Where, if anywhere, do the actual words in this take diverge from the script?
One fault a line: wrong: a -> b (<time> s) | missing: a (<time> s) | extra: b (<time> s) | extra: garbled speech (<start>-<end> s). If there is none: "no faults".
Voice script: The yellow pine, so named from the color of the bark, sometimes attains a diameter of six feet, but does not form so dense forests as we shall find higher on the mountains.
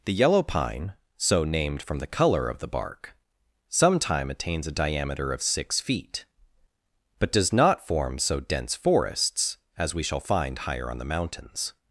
wrong: sometimes -> sometime (3.7 s)